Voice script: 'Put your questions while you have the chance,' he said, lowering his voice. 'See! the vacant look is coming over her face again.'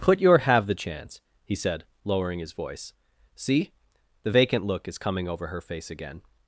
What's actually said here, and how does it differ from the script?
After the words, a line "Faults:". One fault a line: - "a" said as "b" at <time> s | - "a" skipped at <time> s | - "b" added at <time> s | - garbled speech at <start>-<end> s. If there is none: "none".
'Put your have the chance,' he said, lowering his voice. 'See! the vacant look is coming over her face again.'
Faults:
- "questions while you" skipped at 0.4 s